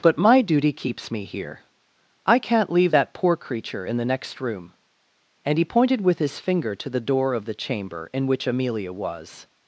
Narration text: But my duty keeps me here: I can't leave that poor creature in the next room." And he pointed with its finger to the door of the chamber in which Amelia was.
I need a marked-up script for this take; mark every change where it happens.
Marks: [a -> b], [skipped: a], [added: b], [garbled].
But my duty keeps me here: I can't leave that poor creature in the next room." And he pointed with [its -> his] finger to the door of the chamber in which Amelia was.